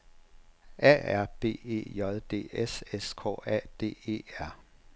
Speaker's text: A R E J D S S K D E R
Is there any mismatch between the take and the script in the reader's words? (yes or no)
yes